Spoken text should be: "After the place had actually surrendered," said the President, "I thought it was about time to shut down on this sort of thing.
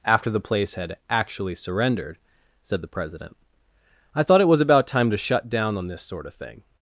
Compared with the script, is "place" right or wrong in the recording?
right